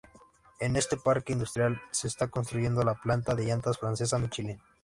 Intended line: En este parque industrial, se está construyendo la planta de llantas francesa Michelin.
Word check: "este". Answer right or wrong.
right